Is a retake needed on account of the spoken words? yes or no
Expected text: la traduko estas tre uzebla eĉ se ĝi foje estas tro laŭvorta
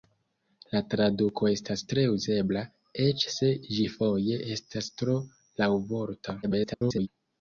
yes